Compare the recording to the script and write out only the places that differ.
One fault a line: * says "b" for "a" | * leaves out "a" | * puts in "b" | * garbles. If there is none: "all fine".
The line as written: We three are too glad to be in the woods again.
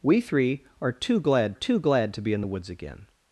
* puts in "too glad"